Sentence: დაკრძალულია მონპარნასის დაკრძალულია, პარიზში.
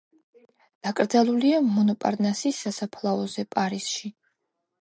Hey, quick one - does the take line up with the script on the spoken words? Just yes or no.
no